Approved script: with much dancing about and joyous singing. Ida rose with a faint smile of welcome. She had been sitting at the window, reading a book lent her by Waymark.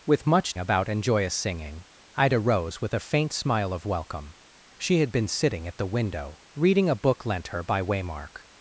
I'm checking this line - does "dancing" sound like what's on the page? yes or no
no